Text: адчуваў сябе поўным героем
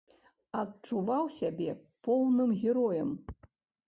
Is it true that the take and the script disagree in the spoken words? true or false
false